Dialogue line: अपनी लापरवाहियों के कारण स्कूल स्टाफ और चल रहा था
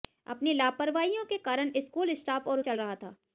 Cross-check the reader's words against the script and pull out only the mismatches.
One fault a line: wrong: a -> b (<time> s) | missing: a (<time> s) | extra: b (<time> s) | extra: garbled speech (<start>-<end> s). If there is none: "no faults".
no faults